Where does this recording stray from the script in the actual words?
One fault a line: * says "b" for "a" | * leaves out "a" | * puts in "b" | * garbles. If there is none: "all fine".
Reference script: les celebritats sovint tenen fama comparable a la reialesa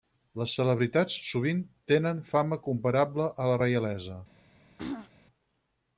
all fine